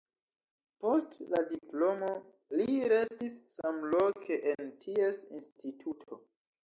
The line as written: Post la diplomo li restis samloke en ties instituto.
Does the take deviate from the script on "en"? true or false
false